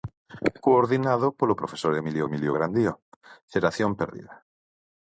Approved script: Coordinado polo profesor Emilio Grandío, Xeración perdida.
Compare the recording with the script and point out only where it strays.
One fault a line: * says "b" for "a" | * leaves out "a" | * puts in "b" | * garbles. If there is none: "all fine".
* puts in "Emilio"